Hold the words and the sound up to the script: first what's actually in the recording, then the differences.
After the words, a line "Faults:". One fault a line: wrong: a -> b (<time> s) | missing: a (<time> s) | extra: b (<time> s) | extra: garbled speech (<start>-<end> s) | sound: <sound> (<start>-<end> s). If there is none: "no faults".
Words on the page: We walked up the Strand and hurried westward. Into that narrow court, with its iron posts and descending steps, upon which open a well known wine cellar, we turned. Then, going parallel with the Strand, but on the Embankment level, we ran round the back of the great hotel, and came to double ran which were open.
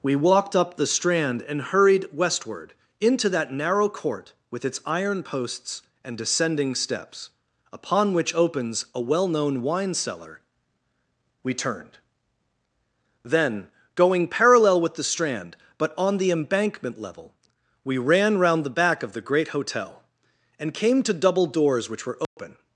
We walked up the Strand and hurried westward. Into that narrow court, with its iron posts and descending steps, upon which opens a well known wine cellar, we turned. Then, going parallel with the Strand, but on the Embankment level, we ran round the back of the great hotel, and came to double doors which were open.
Faults:
wrong: open -> opens (8.3 s)
wrong: ran -> doors (21.4 s)
sound: dropout (22.2-22.4 s)